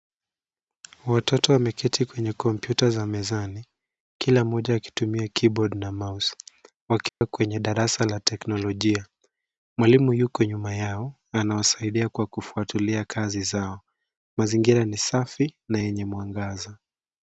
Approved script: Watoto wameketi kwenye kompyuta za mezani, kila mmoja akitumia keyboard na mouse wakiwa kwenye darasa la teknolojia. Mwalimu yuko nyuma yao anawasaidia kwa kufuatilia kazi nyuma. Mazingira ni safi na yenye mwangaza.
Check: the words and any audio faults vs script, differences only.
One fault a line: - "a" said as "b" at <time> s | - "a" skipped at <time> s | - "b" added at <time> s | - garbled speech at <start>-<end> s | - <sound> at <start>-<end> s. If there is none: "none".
- dropout at 7.1-7.2 s
- "nyuma" said as "zao" at 13.4 s